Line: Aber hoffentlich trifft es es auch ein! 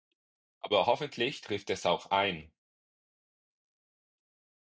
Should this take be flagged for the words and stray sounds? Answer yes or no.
yes